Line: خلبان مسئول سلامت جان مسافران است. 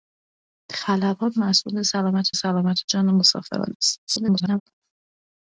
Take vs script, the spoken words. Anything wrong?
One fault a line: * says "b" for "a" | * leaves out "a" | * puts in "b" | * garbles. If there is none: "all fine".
* puts in "سلامت"
* garbles